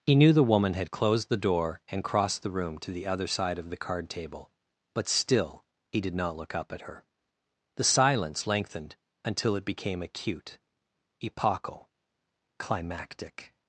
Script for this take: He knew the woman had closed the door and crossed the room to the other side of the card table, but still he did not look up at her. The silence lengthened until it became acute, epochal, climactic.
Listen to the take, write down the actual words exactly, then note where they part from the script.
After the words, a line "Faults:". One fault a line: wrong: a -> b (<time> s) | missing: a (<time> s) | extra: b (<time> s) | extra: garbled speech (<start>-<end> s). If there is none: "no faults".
He knew the woman had closed the door and crossed the room to the other side of the card table, but still he did not look up at her. The silence lengthened until it became acute, epochal, climactic.
Faults:
no faults